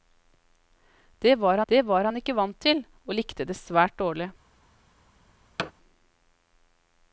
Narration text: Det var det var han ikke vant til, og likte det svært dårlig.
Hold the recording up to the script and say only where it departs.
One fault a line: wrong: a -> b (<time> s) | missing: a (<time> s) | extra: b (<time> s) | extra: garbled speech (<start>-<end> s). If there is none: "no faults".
no faults